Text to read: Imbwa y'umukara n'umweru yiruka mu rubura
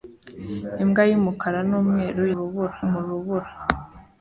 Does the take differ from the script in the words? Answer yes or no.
yes